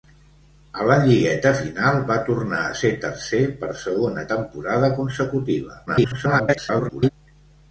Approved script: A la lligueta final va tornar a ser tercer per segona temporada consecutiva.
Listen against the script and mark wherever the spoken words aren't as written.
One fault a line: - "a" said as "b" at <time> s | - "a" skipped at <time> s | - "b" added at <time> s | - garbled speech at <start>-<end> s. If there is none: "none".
- garbled speech at 5.9-7.1 s